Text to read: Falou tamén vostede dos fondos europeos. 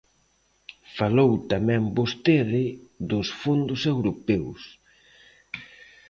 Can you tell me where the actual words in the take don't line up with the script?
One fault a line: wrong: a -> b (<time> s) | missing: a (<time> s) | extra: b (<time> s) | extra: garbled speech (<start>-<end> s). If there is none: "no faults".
no faults